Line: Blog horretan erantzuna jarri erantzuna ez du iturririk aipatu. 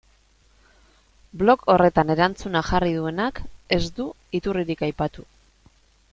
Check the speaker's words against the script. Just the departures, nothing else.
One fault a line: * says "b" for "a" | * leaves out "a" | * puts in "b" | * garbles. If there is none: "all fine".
* says "duenak" for "erantzuna"